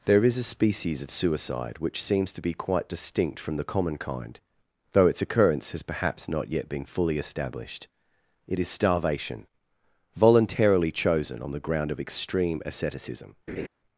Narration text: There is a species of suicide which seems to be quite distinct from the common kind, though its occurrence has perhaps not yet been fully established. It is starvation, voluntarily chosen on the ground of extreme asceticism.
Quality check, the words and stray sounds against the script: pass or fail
fail